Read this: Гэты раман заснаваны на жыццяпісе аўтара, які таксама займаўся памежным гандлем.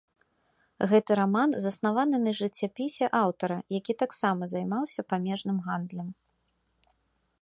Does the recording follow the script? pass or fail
pass